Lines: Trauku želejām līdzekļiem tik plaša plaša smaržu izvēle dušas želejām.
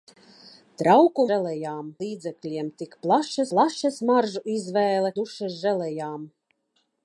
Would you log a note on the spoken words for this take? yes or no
no